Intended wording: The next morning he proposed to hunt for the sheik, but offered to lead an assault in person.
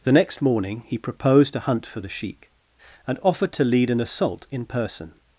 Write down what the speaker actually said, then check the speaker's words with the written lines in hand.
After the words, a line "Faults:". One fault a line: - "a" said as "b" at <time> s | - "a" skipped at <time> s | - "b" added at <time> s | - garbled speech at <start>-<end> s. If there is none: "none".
The next morning he proposed to hunt for the sheik, and offered to lead an assault in person.
Faults:
- "but" said as "and" at 3.1 s